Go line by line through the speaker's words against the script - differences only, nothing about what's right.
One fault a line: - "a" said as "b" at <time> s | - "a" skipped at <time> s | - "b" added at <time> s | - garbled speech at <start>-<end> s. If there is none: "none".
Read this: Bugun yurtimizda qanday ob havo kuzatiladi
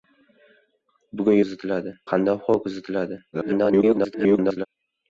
- "yurtimizda" said as "kuzatiladi" at 1.4 s
- garbled speech at 3.3-4.7 s